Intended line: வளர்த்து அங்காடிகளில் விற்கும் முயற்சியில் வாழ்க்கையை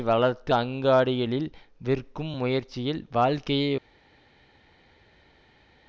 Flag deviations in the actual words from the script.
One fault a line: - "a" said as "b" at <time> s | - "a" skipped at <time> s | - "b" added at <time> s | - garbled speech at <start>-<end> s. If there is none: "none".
none